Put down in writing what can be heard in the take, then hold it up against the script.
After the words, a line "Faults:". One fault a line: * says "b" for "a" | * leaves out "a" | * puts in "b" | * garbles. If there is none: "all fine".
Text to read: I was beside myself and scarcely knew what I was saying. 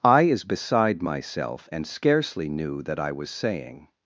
I is beside myself and scarcely knew that I was saying.
Faults:
* says "is" for "was"
* says "that" for "what"